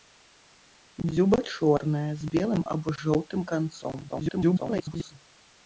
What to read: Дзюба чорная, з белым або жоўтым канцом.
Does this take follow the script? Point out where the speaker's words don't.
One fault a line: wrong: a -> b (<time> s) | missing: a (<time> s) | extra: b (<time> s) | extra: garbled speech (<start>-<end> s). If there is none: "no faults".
extra: garbled speech (4.1-5.1 s)